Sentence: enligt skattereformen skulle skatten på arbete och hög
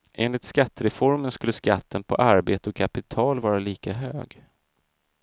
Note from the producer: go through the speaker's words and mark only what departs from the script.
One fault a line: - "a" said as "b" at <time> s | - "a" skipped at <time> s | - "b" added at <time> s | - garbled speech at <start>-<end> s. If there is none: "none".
- "kapital vara lika" added at 2.8 s